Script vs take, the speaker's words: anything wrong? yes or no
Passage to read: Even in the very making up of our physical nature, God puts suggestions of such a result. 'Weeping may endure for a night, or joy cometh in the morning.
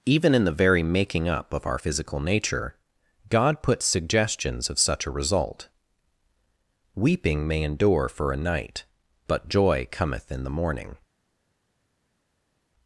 yes